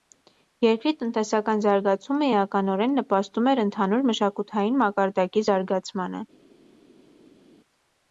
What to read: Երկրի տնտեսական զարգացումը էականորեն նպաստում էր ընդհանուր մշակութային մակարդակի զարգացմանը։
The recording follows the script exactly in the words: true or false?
true